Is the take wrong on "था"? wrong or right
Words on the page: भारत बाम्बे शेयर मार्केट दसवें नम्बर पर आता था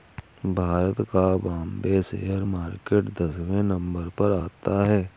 wrong